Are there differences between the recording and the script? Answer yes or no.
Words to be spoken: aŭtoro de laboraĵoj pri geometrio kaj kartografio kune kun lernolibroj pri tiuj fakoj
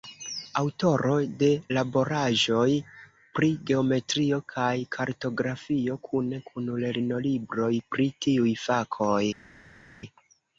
no